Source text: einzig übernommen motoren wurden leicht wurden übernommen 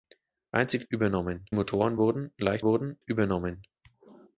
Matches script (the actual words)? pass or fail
pass